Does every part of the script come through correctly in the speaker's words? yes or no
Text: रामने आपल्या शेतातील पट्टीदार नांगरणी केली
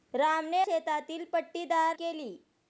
no